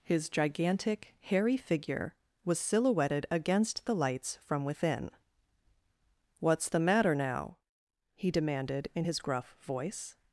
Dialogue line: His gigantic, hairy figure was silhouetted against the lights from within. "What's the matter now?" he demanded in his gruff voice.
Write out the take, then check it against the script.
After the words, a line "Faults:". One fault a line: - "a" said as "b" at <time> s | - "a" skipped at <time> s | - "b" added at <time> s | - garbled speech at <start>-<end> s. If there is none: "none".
His gigantic, hairy figure was silhouetted against the lights from within. "What's the matter now?" he demanded in his gruff voice.
Faults:
none